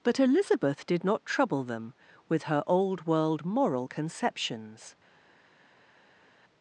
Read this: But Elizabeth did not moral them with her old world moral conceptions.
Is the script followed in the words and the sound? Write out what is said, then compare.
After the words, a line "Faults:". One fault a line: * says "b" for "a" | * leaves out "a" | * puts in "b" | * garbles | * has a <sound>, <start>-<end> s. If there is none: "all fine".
But Elizabeth did not trouble them with her old world moral conceptions.
Faults:
* says "trouble" for "moral"